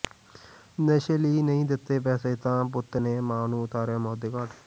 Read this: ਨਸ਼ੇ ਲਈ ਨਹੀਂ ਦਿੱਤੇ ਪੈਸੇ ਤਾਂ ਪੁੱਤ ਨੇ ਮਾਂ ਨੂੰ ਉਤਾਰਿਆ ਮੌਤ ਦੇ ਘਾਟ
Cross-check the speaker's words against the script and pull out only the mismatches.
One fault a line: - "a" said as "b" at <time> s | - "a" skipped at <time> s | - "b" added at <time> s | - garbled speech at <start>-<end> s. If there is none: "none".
none